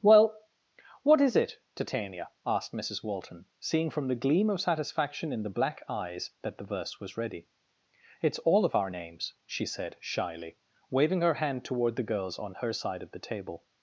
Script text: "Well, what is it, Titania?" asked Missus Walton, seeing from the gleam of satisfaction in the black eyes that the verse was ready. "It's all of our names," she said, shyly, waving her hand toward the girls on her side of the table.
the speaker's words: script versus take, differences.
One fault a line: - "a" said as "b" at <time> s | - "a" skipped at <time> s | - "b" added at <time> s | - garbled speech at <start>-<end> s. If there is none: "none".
none